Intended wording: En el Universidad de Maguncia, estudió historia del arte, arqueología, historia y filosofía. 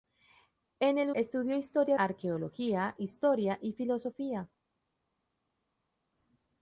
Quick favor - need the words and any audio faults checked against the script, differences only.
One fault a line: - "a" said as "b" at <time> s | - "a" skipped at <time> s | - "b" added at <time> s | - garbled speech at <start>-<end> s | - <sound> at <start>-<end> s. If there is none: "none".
- "Universidad de Maguncia" skipped at 1.1 s
- "del arte" skipped at 2.0 s